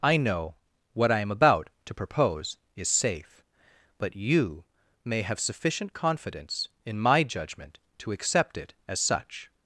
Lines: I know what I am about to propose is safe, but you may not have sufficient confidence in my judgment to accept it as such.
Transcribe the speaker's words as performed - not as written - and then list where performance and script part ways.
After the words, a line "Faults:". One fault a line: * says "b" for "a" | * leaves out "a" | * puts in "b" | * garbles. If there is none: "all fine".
I know what I am about to propose is safe, but you may have sufficient confidence in my judgment to accept it as such.
Faults:
* leaves out "not"